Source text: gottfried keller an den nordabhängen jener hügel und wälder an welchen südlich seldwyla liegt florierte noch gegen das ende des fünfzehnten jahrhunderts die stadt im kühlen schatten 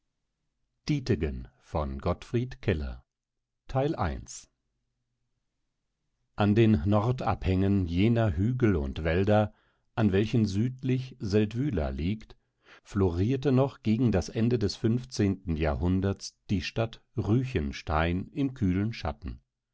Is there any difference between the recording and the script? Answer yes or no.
yes